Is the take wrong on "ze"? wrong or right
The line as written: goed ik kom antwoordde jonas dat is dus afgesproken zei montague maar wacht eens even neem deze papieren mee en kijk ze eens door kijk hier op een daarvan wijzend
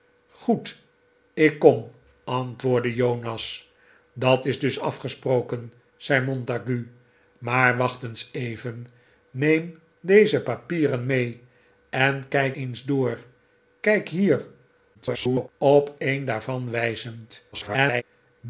wrong